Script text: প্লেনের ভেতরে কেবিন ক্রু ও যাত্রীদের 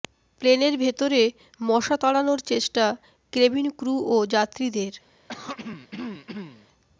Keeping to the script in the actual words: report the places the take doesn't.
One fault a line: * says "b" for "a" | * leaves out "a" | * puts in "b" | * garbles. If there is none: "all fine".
* puts in "মশা তাড়ানোর চেষ্টা"